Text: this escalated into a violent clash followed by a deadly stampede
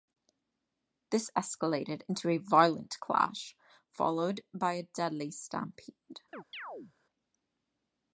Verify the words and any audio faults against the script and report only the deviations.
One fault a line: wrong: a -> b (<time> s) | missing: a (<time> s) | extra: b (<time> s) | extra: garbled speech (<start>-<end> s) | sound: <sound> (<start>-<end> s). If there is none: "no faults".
sound: chirp (6.3-6.9 s)